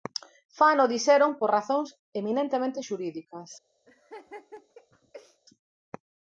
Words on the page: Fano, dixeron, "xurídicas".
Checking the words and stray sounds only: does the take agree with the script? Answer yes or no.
no